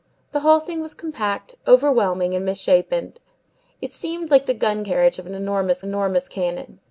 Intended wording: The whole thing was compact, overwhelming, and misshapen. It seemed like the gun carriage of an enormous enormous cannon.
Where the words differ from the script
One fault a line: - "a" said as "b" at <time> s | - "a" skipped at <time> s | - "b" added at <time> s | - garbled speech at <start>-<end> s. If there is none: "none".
none